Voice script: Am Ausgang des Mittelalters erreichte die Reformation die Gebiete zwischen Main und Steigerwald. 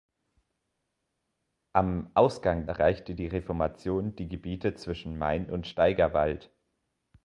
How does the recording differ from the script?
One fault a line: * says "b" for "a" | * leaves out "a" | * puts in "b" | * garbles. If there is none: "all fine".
* leaves out "des Mittelalters"